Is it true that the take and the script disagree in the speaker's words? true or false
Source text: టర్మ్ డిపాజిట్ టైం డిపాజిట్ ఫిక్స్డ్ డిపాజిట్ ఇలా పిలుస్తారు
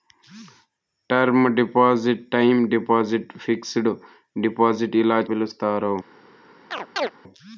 false